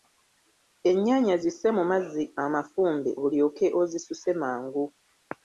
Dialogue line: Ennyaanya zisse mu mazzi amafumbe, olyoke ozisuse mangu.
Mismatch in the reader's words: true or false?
false